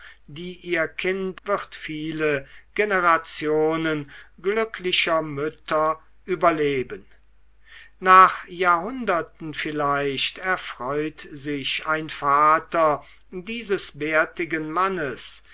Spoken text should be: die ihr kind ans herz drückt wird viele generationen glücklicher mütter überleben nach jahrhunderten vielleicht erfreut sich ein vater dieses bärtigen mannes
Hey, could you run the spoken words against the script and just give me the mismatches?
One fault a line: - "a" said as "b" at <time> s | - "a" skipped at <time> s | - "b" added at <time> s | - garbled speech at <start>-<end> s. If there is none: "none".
- "ans herz drückt" skipped at 1.4 s